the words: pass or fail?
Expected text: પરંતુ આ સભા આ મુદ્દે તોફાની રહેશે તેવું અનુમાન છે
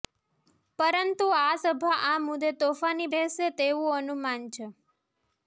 pass